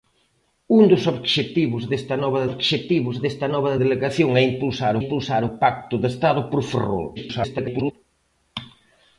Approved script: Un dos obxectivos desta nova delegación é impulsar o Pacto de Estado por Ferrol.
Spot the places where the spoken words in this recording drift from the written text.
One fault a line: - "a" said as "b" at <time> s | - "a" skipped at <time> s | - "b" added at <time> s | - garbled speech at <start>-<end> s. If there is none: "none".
- "obxectivos desta nova" added at 2.5 s
- "impulsar" added at 5.0 s
- garbled speech at 7.2-7.9 s